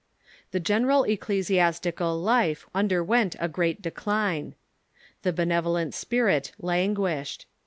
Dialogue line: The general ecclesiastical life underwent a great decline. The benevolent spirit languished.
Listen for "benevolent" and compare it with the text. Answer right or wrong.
right